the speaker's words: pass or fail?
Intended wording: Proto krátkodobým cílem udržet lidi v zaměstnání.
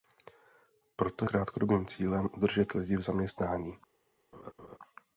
pass